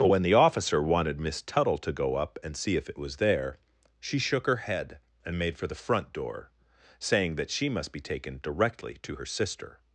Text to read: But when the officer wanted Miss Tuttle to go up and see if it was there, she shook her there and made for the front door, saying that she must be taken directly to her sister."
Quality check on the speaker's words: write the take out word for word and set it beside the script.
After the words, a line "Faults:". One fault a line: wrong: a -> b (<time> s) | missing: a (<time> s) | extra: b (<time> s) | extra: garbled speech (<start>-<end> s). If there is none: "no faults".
But when the officer wanted Miss Tuttle to go up and see if it was there, she shook her head and made for the front door, saying that she must be taken directly to her sister."
Faults:
wrong: there -> head (4.6 s)